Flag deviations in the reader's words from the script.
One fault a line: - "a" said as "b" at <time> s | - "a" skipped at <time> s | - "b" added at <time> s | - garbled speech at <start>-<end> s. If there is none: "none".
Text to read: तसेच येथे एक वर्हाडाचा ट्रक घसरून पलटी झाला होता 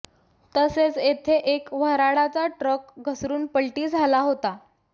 none